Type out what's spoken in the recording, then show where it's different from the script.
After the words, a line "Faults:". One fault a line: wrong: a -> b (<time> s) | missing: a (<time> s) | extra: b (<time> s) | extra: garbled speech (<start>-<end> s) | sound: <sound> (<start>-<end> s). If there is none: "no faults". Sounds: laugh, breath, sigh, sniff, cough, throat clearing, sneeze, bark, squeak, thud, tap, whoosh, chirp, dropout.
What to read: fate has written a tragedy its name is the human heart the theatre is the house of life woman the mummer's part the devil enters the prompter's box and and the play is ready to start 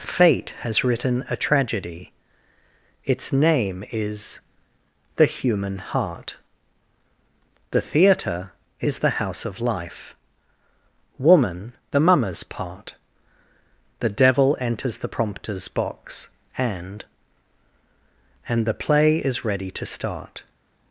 fate has written a tragedy its name is the human heart the theatre is the house of life woman the mummer's part the devil enters the prompter's box and and the play is ready to start
Faults:
no faults